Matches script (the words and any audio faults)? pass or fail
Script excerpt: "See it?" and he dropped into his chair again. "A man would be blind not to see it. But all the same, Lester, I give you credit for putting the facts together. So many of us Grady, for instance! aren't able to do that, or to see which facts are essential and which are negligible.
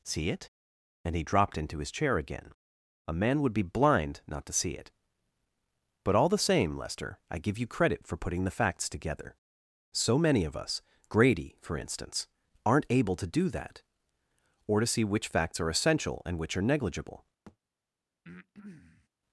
fail